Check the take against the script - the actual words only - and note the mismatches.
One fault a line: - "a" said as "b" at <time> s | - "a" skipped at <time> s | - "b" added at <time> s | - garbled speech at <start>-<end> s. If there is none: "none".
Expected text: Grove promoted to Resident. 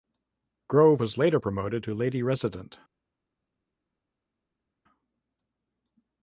- "was later" added at 1.0 s
- "Lady" added at 1.9 s